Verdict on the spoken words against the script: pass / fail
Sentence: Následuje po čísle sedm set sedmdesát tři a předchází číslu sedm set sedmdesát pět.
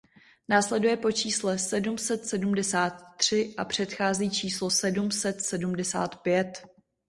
pass